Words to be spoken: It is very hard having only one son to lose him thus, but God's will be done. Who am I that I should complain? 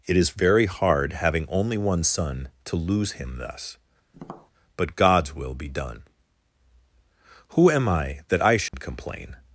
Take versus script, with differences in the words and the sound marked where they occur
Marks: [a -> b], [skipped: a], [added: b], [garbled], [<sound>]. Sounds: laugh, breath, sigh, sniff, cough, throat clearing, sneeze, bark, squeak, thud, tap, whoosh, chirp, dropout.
It is very hard having only one son to lose him thus, [tap] but God's will be done. Who am I that I should [dropout] complain?